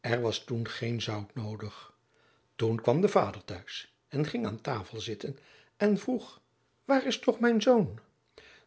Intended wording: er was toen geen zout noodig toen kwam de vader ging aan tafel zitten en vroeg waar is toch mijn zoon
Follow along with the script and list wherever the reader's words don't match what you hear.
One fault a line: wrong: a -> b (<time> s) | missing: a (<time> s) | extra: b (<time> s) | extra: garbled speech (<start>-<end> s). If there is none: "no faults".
extra: thuis en (3.4 s)